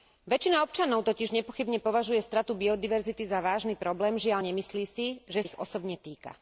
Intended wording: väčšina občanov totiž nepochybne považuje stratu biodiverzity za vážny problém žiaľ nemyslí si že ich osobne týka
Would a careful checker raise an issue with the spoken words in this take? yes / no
no